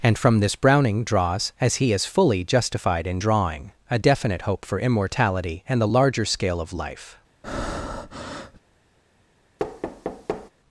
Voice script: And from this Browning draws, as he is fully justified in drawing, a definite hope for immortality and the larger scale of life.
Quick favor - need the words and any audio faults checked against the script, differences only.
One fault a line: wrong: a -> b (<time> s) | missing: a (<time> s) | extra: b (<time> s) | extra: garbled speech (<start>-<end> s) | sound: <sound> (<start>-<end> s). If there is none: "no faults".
sound: breath (7.4-8.6 s)
sound: thud (9.6-10.5 s)